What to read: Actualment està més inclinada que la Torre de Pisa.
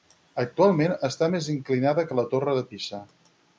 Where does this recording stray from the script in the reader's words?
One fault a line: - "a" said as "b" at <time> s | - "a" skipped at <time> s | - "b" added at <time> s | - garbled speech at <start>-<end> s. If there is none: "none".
none